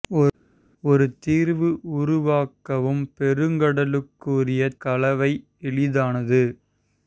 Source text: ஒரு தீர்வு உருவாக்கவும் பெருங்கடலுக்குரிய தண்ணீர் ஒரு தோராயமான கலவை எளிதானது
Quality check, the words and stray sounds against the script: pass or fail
fail